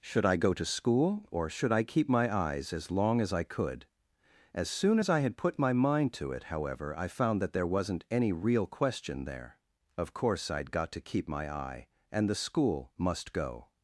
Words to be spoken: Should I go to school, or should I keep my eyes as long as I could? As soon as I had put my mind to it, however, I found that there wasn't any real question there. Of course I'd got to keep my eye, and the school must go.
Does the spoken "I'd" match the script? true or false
true